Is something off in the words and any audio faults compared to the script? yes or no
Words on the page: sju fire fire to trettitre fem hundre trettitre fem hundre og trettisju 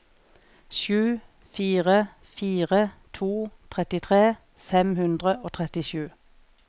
yes